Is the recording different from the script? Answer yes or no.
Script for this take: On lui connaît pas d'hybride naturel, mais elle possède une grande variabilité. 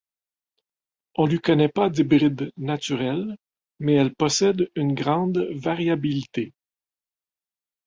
no